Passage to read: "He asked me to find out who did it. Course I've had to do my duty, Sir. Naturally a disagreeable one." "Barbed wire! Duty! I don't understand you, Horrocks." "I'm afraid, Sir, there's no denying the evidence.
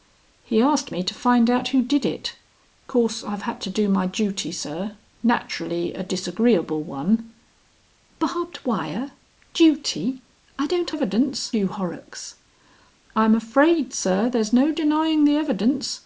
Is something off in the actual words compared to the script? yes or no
yes